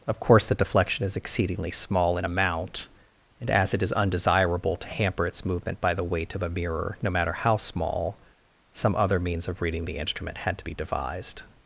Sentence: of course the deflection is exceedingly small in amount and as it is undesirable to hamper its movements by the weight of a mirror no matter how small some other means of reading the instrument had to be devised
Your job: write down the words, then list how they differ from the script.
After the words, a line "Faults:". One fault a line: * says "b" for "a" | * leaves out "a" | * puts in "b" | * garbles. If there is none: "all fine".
of course the deflection is exceedingly small in amount and as it is undesirable to hamper its movement by the weight of a mirror no matter how small some other means of reading the instrument had to be devised
Faults:
* says "movement" for "movements"